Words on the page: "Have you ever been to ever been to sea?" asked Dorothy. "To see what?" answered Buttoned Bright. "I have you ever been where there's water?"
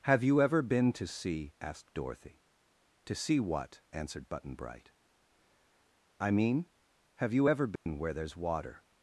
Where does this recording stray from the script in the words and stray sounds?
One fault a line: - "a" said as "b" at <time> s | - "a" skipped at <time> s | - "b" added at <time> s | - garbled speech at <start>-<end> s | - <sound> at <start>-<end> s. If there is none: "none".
- "ever been to" skipped at 1.1 s
- "Buttoned" said as "Button" at 4.3 s
- "mean" added at 6.3 s
- dropout at 7.8-7.9 s